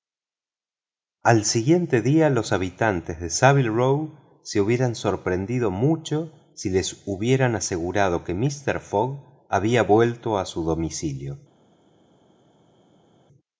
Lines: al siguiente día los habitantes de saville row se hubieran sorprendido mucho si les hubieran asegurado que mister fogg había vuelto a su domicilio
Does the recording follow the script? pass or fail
pass